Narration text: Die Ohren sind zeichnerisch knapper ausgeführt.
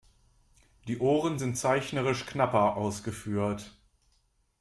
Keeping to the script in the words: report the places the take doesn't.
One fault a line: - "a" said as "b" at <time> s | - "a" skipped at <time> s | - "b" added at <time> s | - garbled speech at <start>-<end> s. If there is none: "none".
none